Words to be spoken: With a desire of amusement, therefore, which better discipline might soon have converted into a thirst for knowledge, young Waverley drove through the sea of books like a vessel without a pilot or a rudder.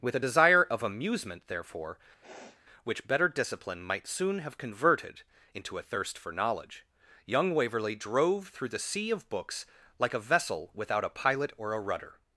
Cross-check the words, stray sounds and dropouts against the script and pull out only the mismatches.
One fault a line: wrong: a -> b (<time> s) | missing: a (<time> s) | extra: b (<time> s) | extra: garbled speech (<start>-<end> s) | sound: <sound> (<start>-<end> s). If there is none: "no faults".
sound: sniff (2.2-2.6 s)